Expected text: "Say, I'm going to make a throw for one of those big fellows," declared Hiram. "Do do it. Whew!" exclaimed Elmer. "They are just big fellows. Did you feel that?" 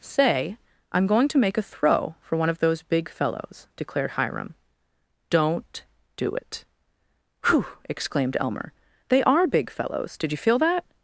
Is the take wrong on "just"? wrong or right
wrong